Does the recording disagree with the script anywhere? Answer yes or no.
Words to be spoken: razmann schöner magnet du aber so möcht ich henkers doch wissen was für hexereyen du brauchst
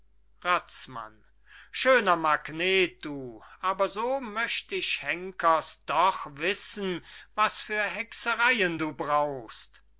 no